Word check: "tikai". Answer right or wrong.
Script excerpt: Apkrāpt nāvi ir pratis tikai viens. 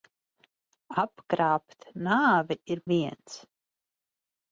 wrong